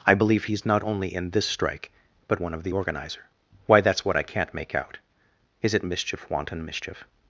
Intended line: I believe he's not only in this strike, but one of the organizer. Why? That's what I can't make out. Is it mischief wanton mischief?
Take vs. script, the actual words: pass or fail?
pass